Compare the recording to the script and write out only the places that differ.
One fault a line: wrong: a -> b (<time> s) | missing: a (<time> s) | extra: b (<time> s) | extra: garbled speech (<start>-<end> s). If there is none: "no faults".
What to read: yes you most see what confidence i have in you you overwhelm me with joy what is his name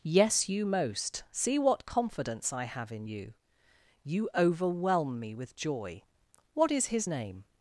no faults